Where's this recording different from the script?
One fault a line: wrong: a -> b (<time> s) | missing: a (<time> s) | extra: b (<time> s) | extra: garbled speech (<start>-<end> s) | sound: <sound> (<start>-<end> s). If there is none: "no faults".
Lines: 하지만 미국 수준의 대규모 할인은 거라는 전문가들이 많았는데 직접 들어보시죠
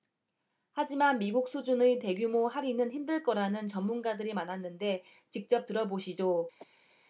extra: 힘들 (2.9 s)
sound: cough (6.6-7.0 s)